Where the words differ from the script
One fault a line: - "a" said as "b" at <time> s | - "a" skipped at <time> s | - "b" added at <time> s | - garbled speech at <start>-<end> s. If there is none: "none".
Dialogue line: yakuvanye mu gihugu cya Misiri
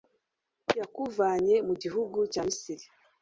none